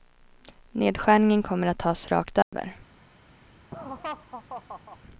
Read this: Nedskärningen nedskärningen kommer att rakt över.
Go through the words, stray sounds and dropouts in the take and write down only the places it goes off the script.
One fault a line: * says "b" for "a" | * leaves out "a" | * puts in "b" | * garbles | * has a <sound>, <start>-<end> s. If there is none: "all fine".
* leaves out "nedskärningen"
* puts in "tas"
* has a dropout, 2.4-2.5 s
* has a laugh, 3.7-5.0 s